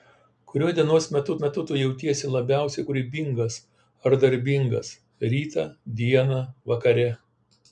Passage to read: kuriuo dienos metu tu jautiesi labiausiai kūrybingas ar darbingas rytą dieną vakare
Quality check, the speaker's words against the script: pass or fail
fail